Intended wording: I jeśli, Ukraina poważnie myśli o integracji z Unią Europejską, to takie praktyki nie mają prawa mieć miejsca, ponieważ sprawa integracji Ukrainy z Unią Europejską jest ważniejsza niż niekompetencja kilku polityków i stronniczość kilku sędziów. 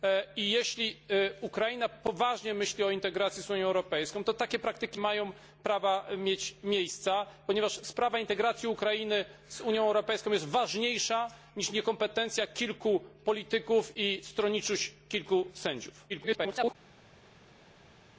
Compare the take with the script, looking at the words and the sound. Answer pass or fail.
fail